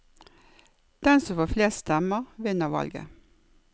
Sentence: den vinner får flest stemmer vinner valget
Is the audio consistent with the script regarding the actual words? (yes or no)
no